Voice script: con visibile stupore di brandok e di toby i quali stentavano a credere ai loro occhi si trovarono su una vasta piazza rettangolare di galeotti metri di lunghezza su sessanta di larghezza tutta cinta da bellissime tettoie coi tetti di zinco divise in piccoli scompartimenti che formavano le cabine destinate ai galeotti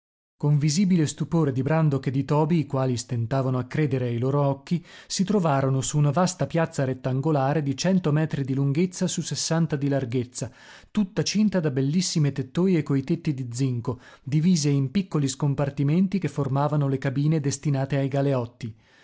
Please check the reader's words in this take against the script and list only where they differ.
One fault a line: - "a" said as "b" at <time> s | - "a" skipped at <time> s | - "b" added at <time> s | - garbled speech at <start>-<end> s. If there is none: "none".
- "galeotti" said as "cento" at 7.8 s